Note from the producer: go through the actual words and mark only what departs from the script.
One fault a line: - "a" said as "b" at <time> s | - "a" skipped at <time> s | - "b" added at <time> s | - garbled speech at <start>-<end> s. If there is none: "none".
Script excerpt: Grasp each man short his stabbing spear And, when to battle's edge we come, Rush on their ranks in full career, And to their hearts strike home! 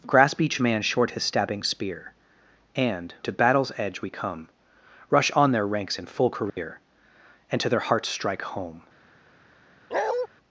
- "when" skipped at 3.1 s